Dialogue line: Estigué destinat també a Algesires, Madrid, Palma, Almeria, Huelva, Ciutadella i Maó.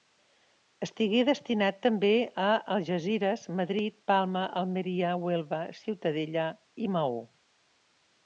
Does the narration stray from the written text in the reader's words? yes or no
no